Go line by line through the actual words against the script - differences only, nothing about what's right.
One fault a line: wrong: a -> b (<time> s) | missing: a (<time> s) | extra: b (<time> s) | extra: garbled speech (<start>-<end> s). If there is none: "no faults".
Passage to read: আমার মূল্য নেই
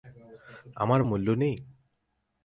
no faults